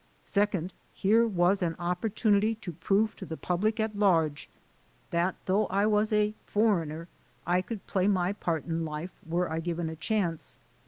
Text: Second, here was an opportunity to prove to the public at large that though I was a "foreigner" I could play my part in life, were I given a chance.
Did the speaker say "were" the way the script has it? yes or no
yes